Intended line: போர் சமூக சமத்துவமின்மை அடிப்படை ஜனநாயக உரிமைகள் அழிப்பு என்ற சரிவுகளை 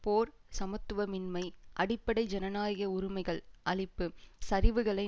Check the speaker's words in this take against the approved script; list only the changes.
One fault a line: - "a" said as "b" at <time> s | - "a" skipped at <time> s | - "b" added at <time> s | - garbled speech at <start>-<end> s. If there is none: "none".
- "சமூக" skipped at 0.3 s
- "என்ற" skipped at 4.1 s